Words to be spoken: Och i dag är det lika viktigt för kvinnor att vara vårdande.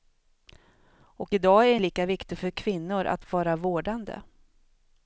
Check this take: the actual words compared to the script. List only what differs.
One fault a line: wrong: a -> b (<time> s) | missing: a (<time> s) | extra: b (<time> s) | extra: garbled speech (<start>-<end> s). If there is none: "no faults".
no faults